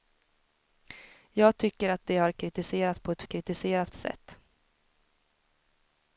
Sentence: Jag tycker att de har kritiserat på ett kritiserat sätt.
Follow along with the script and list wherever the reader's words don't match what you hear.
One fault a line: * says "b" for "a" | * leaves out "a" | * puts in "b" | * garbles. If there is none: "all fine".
all fine